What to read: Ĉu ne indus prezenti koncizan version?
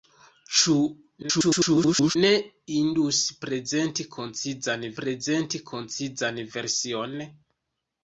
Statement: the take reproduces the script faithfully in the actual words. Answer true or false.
false